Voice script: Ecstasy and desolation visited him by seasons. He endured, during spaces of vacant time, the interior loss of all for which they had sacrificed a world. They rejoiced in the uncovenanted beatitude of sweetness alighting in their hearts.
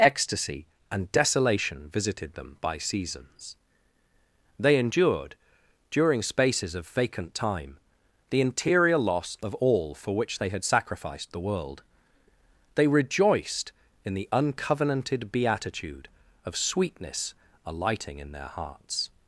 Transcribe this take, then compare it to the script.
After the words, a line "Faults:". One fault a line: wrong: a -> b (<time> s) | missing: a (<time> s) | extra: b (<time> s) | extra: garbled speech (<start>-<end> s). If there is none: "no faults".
Ecstasy and desolation visited them by seasons. They endured, during spaces of vacant time, the interior loss of all for which they had sacrificed the world. They rejoiced in the uncovenanted beatitude of sweetness alighting in their hearts.
Faults:
wrong: him -> them (2.3 s)
wrong: He -> They (4.6 s)
wrong: a -> the (11.3 s)